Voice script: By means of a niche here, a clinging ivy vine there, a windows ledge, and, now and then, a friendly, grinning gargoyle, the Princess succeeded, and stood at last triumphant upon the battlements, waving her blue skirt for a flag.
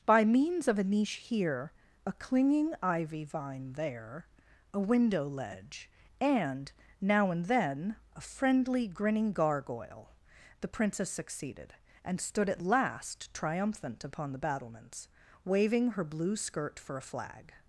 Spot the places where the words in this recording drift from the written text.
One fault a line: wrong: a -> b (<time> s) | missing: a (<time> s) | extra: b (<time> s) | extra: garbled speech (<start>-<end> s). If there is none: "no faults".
wrong: windows -> window (4.8 s)